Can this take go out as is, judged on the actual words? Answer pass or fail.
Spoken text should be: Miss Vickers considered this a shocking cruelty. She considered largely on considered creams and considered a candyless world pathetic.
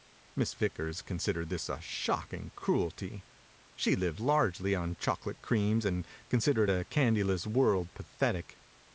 fail